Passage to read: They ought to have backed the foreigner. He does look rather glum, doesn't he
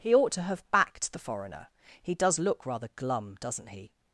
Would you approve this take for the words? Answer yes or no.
no